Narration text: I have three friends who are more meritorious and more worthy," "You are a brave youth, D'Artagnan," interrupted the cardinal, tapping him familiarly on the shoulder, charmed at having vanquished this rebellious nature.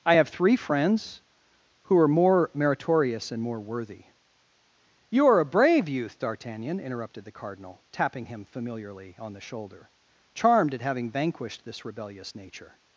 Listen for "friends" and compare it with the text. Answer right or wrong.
right